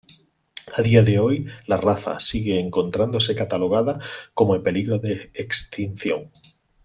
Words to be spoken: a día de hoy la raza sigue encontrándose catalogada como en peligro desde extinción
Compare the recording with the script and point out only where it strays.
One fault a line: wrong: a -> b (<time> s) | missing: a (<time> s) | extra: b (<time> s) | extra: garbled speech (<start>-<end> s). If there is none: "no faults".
wrong: desde -> de (5.0 s)